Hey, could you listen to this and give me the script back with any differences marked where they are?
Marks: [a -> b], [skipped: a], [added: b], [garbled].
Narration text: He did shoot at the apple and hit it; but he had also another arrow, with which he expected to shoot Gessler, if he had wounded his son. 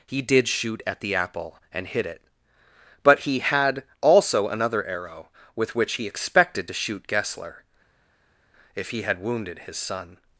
He did shoot at the apple and hit it; but he had also another arrow, with which he expected to shoot Gessler, if he had wounded his son.